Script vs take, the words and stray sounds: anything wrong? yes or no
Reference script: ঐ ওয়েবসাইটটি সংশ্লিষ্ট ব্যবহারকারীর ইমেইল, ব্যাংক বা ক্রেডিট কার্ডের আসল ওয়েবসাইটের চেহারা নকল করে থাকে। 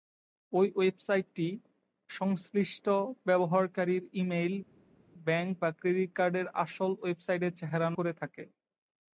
yes